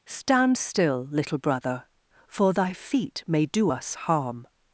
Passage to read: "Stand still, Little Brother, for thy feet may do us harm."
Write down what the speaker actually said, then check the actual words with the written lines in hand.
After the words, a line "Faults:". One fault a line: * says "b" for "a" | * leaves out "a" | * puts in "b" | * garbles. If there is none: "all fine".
"Stand still, Little Brother, for thy feet may do us harm."
Faults:
all fine